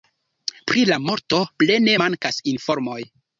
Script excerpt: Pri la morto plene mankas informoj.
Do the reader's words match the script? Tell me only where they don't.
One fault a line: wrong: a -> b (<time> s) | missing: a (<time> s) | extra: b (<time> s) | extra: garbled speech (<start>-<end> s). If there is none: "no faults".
no faults